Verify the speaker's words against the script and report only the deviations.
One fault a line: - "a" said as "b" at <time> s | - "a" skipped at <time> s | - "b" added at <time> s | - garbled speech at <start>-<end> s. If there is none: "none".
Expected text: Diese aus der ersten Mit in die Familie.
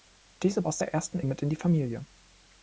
none